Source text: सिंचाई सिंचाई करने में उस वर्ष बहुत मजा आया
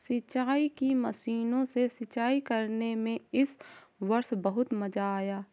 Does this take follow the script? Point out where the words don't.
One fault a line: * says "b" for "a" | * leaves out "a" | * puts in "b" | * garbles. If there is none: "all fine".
* puts in "की मशीनों से"
* says "इस" for "उस"